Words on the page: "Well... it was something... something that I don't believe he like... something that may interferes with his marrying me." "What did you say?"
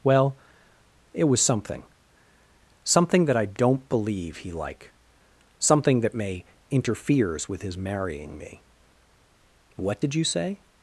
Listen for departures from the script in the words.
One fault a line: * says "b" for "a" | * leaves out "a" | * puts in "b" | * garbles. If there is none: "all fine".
all fine